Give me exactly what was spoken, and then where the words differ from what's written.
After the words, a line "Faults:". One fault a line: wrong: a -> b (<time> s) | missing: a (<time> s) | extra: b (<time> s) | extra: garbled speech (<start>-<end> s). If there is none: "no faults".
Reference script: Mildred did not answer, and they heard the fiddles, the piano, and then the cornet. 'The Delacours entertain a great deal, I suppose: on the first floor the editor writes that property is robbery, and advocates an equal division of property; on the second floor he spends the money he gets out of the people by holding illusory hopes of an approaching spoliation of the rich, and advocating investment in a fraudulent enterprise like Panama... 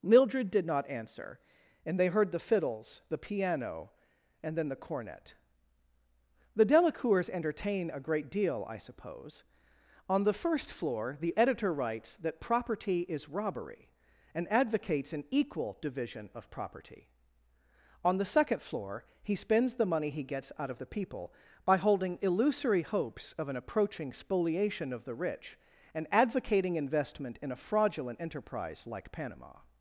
Mildred did not answer, and they heard the fiddles, the piano, and then the cornet. 'The Delacours entertain a great deal, I suppose: on the first floor the editor writes that property is robbery, and advocates an equal division of property; on the second floor he spends the money he gets out of the people by holding illusory hopes of an approaching spoliation of the rich, and advocating investment in a fraudulent enterprise like Panama...
Faults:
no faults